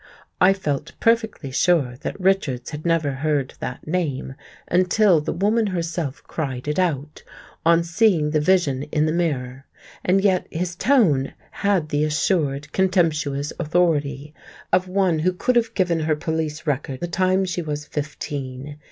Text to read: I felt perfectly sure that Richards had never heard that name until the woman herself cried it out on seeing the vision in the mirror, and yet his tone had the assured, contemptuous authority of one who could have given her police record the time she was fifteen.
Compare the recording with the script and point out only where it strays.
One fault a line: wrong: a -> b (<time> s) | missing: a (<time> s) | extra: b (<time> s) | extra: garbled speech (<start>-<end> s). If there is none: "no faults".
no faults